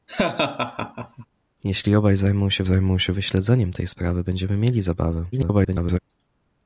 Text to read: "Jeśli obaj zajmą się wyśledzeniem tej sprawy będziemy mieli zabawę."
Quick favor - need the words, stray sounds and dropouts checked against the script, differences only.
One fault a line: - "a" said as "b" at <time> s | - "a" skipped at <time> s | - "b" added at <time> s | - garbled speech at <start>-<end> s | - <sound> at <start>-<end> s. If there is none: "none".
- laugh at 0.1-1.3 s
- "zajmą się" added at 2.6 s
- garbled speech at 5.3-6.0 s